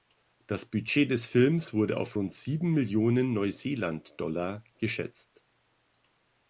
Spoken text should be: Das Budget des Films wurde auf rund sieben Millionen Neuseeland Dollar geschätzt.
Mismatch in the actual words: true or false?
false